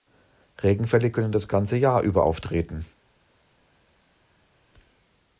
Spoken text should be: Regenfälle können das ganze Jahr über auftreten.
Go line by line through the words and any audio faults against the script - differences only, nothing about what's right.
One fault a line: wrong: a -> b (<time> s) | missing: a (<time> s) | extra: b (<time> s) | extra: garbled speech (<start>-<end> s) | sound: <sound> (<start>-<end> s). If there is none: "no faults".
no faults